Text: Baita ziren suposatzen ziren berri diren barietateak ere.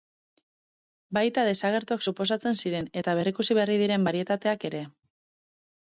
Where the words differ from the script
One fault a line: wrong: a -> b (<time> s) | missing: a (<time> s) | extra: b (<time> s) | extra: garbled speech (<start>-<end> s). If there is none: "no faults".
wrong: ziren -> desagertuak (1.5 s)
extra: eta berrikusi (3.0 s)